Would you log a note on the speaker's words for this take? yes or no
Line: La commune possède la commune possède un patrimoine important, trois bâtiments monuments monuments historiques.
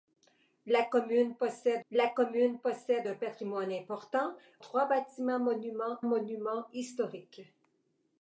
no